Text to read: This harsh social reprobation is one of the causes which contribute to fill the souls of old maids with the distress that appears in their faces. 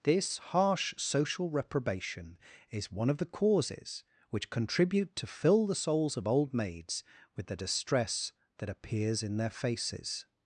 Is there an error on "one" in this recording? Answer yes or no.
no